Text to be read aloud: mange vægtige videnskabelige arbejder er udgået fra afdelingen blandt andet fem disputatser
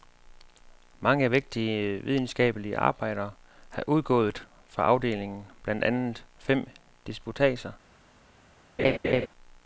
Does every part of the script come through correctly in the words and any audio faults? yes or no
no